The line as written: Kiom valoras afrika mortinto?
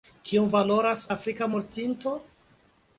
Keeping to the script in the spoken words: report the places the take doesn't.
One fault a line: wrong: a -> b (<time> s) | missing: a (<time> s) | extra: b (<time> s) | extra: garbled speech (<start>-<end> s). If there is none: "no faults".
no faults